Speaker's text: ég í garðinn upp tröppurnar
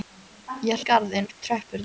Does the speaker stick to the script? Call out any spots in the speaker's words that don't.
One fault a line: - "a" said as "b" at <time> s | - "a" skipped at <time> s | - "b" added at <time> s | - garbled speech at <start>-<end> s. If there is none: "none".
none